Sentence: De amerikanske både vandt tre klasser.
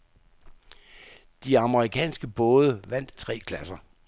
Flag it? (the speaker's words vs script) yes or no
no